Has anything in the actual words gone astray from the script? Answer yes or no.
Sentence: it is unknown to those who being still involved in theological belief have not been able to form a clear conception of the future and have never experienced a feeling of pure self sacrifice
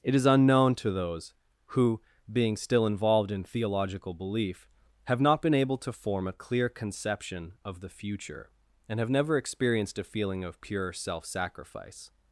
no